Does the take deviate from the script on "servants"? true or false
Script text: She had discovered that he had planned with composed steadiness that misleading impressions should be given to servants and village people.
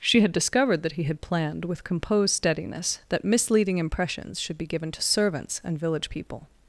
false